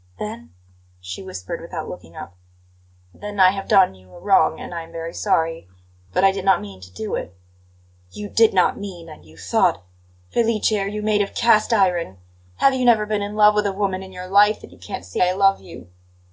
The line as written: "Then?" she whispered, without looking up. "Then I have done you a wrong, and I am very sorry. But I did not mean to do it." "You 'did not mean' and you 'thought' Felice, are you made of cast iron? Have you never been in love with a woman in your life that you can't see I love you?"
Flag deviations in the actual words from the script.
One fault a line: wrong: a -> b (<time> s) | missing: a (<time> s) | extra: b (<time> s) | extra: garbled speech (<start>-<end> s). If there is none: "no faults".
no faults